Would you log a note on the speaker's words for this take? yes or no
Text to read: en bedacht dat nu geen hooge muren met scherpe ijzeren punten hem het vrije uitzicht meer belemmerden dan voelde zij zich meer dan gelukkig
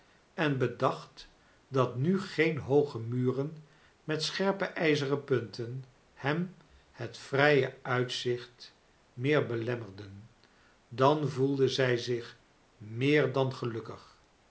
no